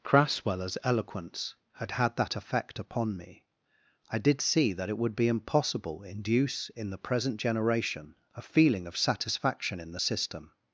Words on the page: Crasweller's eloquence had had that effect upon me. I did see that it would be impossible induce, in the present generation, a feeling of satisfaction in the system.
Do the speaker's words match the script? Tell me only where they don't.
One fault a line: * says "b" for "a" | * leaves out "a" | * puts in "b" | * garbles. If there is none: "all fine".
all fine